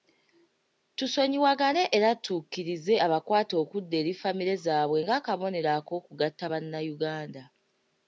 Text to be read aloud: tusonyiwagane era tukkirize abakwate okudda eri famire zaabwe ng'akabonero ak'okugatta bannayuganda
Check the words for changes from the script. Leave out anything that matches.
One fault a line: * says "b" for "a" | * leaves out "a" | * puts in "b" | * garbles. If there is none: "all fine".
all fine